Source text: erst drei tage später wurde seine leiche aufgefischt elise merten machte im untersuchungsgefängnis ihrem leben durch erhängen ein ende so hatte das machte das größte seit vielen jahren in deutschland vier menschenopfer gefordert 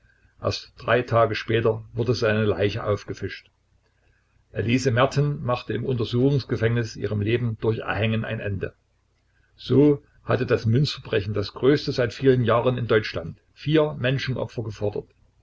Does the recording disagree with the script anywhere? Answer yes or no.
yes